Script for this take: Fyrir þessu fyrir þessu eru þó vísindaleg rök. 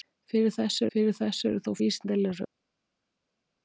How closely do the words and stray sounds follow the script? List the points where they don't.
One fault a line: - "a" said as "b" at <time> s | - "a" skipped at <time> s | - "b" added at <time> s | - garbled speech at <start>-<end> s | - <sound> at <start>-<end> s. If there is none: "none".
none